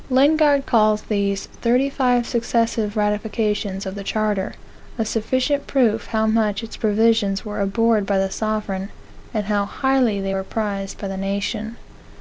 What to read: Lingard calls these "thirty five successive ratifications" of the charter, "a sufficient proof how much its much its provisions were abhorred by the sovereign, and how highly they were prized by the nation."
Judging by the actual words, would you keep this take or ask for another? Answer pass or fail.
fail